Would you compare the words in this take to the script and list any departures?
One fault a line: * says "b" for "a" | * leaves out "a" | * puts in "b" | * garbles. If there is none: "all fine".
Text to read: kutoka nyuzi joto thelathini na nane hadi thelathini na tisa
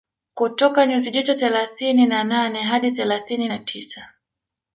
all fine